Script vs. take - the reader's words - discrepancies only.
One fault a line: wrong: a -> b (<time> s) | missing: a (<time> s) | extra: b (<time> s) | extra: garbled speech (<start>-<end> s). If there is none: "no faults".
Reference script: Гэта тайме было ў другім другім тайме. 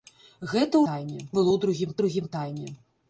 no faults